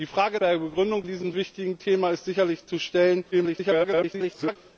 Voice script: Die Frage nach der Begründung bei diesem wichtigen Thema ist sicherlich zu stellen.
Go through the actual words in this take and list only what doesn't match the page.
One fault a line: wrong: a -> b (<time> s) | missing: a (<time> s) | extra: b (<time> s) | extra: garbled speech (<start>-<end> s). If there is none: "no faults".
missing: nach (0.4 s)
missing: bei (1.1 s)
extra: garbled speech (3.3-4.6 s)